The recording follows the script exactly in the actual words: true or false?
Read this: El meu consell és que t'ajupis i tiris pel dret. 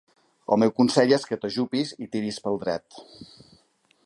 true